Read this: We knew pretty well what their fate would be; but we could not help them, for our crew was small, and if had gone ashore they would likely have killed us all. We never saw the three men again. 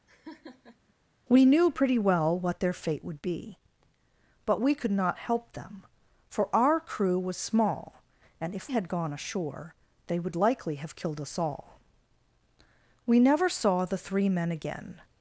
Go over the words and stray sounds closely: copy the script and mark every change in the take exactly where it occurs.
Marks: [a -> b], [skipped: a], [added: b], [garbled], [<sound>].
[laugh] We knew pretty well what their fate would be; but we could not help them, for our crew was small, and if had gone ashore they would likely have killed us all. We never saw the three men again.